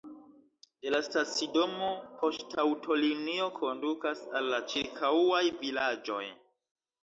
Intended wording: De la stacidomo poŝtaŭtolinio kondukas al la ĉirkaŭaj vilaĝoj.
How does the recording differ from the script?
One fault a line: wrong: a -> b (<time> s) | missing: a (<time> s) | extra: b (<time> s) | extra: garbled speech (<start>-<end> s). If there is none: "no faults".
no faults